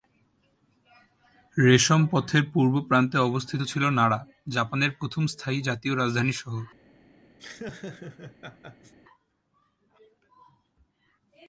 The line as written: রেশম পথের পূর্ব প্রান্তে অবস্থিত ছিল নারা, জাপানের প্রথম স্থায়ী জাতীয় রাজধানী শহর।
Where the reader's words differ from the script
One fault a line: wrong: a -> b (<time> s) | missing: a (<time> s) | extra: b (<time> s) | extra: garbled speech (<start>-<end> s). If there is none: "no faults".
no faults